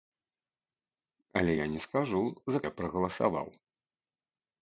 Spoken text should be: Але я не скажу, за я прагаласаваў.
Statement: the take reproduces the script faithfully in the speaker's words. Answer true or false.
true